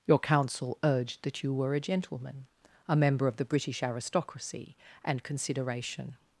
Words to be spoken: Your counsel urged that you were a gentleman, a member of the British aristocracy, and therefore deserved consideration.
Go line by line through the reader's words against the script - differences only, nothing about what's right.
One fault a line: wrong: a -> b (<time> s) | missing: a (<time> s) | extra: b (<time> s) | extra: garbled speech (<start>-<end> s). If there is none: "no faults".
missing: therefore deserved (5.2 s)